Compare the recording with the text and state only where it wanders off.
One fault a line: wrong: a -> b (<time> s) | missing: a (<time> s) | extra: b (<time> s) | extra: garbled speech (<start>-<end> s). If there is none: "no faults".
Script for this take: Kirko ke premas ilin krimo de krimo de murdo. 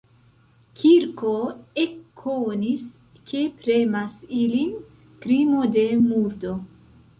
extra: ekkonis (1.8 s)
missing: krimo de (5.9 s)